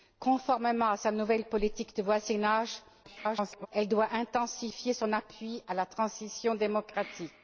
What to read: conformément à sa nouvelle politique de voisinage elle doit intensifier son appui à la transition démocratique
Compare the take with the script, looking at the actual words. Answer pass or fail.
fail